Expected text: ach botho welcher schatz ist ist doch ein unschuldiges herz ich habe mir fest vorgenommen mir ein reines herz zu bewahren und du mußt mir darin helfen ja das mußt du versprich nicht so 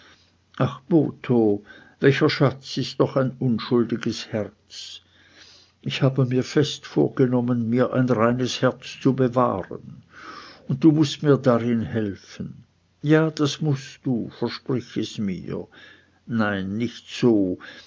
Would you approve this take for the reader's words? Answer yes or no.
no